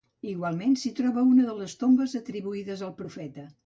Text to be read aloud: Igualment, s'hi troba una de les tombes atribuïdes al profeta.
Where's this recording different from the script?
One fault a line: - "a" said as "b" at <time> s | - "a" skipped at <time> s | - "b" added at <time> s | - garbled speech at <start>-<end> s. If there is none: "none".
none